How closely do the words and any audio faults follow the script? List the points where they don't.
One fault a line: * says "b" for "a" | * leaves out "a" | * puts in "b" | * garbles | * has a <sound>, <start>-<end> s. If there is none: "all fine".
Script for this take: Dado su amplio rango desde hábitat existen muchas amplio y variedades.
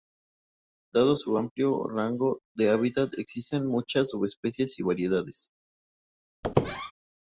* says "de" for "desde"
* says "subespecies" for "amplio"
* has a squeak, 6.4-6.9 s